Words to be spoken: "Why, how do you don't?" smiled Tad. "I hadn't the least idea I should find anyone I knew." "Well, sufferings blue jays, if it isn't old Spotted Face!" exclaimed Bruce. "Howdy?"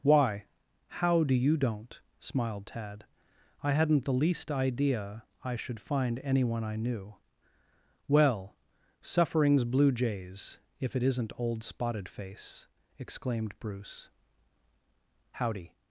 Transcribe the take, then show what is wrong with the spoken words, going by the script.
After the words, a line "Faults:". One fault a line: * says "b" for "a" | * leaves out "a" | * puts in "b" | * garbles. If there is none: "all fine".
"Why, how do you don't?" smiled Tad. "I hadn't the least idea I should find anyone I knew." "Well, sufferings blue jays, if it isn't old Spotted Face!" exclaimed Bruce. "Howdy?"
Faults:
all fine